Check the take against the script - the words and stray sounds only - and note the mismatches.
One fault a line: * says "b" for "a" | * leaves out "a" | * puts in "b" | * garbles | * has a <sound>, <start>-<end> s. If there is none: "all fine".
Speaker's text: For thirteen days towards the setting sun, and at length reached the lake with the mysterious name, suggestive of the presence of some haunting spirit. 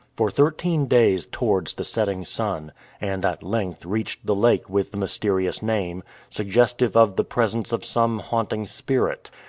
all fine